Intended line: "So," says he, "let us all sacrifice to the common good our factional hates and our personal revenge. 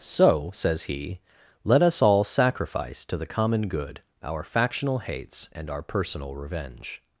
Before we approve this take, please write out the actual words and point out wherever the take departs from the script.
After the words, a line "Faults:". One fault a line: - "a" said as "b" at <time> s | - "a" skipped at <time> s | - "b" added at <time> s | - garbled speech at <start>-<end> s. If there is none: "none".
"So," says he, "let us all sacrifice to the common good our factional hates and our personal revenge.
Faults:
none